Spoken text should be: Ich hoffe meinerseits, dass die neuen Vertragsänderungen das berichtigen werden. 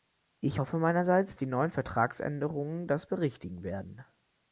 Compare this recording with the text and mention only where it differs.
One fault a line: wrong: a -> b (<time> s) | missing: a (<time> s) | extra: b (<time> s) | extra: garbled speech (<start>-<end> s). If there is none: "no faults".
missing: dass (1.3 s)